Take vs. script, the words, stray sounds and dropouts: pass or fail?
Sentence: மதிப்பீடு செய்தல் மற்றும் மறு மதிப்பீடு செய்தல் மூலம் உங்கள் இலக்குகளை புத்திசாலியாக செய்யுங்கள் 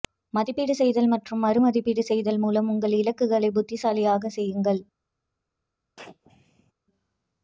fail